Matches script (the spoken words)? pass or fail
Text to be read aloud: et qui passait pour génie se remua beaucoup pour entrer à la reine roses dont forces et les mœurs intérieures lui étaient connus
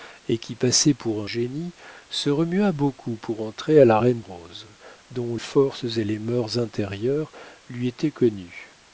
pass